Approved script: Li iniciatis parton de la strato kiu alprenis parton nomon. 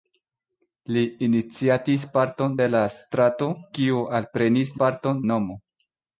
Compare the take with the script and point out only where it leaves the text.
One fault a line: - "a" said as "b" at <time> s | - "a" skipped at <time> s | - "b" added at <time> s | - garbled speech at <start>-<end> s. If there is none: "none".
none